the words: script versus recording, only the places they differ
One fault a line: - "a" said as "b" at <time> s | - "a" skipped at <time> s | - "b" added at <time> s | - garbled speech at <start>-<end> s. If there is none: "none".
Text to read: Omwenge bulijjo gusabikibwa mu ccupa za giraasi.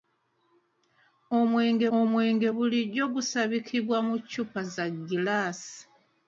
- "omwenge" added at 2.0 s